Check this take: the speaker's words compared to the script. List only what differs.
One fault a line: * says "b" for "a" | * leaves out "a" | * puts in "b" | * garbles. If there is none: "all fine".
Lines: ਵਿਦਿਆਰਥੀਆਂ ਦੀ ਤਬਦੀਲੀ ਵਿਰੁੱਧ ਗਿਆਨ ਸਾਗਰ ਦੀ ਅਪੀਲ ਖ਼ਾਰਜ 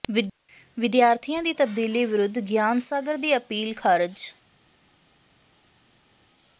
all fine